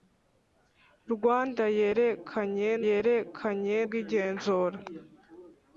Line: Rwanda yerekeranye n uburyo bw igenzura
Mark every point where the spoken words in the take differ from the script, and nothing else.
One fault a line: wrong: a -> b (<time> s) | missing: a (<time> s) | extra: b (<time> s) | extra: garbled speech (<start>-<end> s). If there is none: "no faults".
wrong: uburyo -> yerekeranye (2.9 s)